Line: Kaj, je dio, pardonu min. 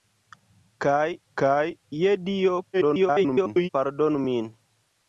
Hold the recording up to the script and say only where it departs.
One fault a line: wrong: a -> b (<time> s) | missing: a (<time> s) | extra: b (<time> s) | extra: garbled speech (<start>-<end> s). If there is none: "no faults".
extra: kaj (1.4 s)
extra: garbled speech (2.7-3.7 s)